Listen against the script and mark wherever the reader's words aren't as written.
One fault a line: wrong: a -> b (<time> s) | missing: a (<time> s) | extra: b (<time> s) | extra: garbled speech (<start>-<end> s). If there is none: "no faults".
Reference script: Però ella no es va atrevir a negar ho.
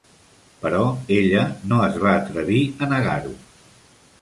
no faults